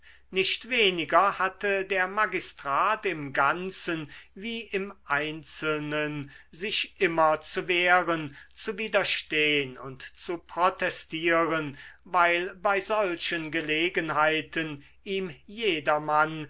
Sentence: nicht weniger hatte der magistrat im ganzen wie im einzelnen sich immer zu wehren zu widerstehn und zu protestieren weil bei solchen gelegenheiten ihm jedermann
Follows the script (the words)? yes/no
yes